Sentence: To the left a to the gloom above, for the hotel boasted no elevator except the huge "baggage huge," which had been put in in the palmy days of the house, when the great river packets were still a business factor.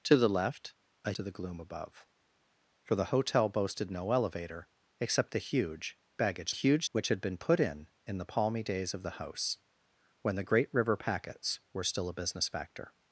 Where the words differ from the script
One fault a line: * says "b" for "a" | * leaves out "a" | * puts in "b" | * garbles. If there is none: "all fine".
all fine